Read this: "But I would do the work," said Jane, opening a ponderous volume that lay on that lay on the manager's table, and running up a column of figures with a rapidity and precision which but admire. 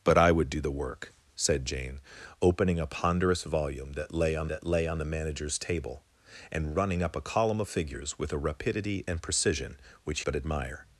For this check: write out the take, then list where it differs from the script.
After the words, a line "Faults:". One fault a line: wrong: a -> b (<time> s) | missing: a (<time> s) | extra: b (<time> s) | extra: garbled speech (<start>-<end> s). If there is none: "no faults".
"But I would do the work," said Jane, opening a ponderous volume that lay on that lay on the manager's table, and running up a column of figures with a rapidity and precision which but admire.
Faults:
no faults